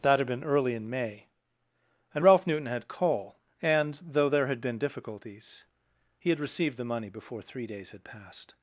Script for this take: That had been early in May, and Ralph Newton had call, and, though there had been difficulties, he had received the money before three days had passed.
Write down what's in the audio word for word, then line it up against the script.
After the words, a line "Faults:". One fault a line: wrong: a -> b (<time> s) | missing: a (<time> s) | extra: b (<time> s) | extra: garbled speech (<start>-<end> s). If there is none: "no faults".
That had been early in May, and Ralph Newton had call, and, though there had been difficulties, he had received the money before three days had passed.
Faults:
no faults